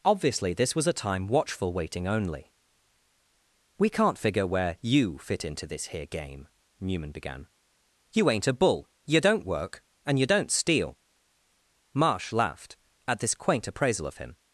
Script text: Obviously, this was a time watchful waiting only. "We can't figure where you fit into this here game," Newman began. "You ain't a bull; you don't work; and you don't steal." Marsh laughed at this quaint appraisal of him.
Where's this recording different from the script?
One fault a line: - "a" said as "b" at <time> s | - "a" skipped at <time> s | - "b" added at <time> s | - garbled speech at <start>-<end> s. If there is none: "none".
none